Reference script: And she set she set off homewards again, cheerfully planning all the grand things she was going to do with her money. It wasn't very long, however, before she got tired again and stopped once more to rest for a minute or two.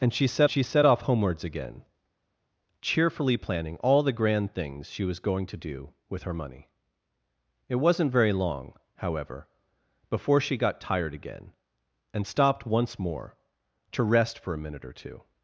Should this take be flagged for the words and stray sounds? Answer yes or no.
no